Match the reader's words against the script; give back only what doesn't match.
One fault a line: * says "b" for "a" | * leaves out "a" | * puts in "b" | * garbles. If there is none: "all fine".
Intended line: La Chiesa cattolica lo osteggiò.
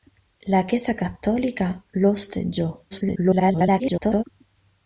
* garbles